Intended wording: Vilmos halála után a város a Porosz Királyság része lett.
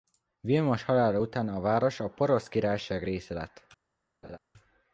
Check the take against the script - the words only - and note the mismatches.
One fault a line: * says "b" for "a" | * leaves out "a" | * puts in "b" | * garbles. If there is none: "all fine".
all fine